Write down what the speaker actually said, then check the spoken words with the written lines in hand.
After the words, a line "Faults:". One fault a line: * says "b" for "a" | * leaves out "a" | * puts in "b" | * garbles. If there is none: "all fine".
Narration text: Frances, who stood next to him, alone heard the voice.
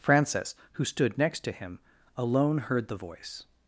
Frances, who stood next to him, alone heard the voice.
Faults:
all fine